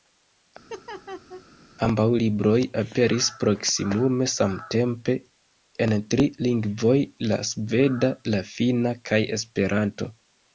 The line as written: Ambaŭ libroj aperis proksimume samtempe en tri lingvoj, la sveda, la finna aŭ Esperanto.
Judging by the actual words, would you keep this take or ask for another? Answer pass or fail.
fail